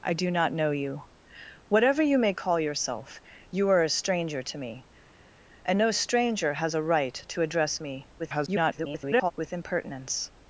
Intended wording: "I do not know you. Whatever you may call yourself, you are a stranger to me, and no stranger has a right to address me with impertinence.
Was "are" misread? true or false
false